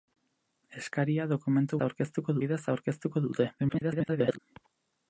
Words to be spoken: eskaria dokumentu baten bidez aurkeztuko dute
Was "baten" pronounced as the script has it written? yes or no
no